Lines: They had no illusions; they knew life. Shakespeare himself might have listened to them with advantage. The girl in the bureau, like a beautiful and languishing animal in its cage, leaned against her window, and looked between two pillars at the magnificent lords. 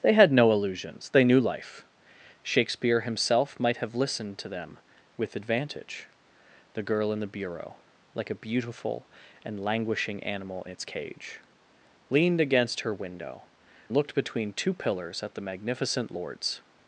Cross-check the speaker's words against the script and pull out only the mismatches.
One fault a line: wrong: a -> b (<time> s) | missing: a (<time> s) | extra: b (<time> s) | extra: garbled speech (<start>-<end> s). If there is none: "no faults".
missing: in (10.7 s)
missing: and (13.4 s)